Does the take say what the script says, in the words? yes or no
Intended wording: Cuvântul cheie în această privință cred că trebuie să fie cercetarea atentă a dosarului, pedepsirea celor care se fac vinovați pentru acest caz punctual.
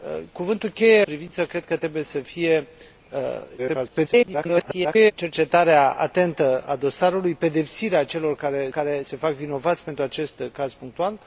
no